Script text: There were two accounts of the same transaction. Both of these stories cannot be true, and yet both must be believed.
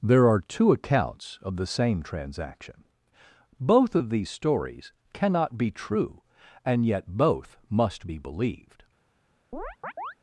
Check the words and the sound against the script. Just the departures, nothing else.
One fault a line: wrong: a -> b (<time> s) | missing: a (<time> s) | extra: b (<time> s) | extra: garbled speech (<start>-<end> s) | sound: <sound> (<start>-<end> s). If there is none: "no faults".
wrong: were -> are (0.3 s)
sound: chirp (9.5-10.1 s)